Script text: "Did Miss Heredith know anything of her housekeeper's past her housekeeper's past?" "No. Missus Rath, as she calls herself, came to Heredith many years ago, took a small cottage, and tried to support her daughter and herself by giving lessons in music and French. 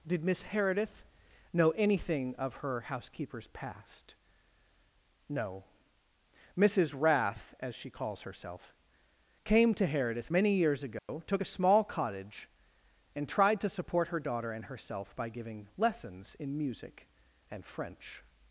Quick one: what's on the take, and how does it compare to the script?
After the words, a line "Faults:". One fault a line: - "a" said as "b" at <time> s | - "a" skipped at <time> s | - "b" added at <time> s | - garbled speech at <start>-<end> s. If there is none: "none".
"Did Miss Heredith know anything of her housekeeper's past?" "No. Missus Rath, as she calls herself, came to Heredith many years ago, took a small cottage, and tried to support her daughter and herself by giving lessons in music and French.
Faults:
- "her housekeeper's past" skipped at 4.2 s